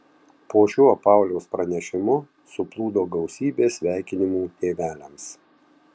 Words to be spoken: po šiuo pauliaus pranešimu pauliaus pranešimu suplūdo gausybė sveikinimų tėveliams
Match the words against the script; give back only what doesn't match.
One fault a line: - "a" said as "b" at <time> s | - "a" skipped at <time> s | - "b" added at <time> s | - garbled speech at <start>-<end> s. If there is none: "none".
- "pauliaus pranešimu" skipped at 2.2 s